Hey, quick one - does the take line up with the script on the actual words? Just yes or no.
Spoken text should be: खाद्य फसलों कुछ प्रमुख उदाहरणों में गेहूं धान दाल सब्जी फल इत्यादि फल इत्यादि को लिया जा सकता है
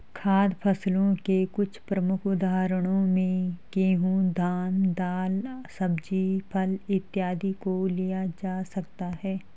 no